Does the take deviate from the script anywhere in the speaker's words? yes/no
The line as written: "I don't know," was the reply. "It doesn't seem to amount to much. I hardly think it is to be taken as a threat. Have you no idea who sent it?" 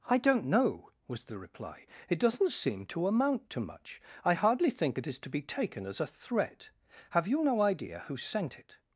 no